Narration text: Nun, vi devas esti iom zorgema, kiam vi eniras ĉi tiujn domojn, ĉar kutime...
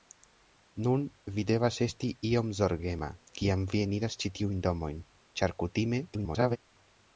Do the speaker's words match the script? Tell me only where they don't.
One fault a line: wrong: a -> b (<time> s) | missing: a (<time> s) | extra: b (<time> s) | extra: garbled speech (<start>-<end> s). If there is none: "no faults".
extra: garbled speech (6.1-6.6 s)